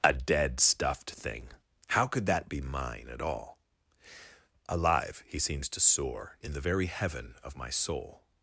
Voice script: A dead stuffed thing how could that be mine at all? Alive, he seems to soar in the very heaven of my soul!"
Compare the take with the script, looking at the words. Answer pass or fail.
pass